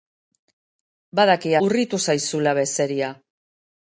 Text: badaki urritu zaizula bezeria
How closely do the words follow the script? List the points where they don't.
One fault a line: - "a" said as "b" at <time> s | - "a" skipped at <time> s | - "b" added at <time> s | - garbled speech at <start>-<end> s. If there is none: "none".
none